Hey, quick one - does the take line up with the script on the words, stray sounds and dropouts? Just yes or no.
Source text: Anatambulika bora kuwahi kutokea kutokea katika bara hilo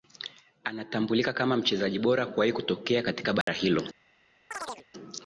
no